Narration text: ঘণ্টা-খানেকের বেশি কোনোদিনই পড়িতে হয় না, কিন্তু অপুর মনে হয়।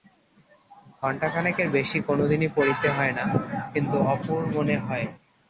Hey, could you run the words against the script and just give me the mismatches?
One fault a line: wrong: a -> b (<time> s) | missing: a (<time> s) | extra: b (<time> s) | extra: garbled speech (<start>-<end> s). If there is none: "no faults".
no faults